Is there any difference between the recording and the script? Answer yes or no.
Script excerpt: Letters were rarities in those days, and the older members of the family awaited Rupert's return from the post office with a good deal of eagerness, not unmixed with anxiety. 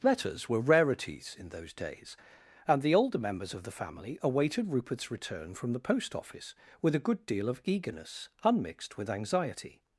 yes